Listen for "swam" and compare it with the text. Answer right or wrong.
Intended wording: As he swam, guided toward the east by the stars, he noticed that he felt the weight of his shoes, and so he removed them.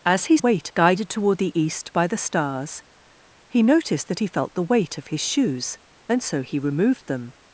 wrong